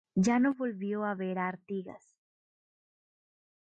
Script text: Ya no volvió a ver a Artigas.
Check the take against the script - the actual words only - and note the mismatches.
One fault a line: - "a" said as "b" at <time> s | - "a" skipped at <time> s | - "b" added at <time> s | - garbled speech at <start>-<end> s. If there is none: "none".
none